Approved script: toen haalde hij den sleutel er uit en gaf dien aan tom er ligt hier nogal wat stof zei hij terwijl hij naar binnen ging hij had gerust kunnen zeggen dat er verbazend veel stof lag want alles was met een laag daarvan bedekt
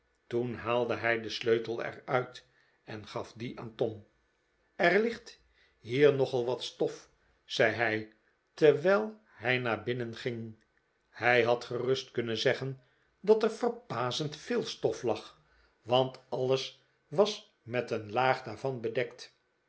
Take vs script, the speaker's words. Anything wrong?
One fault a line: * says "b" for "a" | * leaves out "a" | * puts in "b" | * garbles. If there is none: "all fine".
all fine